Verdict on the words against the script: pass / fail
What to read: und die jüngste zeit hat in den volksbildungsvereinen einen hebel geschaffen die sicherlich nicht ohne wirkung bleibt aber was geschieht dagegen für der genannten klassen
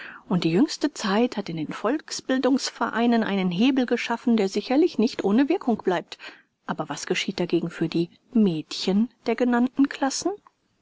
fail